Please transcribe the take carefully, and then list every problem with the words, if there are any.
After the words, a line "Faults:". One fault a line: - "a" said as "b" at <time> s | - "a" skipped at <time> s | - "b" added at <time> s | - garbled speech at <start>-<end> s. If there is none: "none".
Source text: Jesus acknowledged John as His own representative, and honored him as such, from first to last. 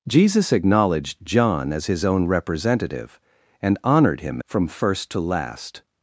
Jesus acknowledged John as His own representative, and honored him from first to last.
Faults:
- "as such" skipped at 4.4 s